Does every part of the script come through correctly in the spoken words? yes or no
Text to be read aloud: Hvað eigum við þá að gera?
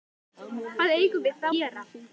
no